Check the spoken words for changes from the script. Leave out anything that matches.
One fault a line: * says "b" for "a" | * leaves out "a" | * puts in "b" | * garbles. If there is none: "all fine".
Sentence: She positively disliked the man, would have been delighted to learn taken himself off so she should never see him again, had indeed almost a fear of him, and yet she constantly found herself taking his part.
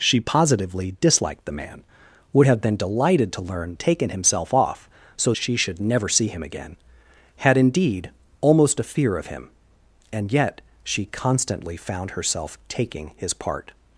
all fine